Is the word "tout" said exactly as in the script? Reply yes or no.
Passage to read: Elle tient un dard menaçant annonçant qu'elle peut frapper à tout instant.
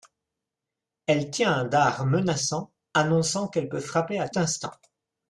no